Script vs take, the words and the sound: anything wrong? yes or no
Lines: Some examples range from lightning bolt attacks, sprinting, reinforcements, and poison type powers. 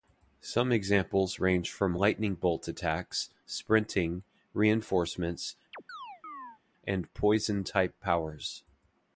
yes